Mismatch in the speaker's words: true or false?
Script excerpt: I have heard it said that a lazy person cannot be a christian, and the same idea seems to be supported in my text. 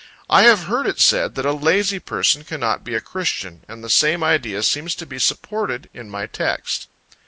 false